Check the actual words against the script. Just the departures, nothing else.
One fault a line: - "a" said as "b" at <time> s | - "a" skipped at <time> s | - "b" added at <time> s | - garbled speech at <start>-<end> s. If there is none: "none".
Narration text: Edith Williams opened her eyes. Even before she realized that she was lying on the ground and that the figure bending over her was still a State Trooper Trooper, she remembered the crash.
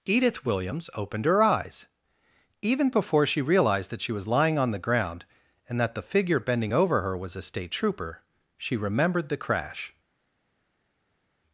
- "still" skipped at 7.4 s
- "Trooper" skipped at 8.2 s